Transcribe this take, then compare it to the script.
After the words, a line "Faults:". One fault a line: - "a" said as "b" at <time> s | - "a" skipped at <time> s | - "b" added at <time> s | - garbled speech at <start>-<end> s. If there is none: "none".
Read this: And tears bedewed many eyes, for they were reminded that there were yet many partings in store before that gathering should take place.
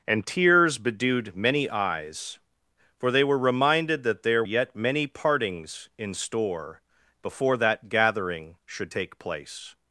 And tears bedewed many eyes, for they were reminded that there yet many partings in store before that gathering should take place.
Faults:
- "were" skipped at 4.4 s